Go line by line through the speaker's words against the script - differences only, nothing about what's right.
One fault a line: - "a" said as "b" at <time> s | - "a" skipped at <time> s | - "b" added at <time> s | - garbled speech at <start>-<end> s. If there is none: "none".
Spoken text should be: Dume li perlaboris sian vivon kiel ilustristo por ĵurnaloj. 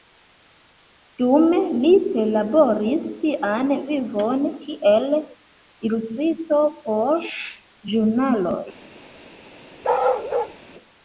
none